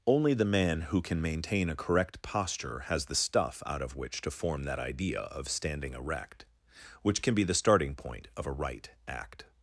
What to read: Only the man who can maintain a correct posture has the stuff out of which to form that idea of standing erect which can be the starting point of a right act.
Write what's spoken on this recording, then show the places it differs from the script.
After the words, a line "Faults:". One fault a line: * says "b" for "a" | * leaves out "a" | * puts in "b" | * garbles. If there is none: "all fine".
Only the man who can maintain a correct posture has the stuff out of which to form that idea of standing erect which can be the starting point of a right act.
Faults:
all fine